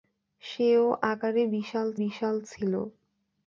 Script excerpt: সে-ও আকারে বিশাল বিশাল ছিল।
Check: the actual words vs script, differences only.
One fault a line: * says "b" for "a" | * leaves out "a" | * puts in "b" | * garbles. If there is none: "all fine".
all fine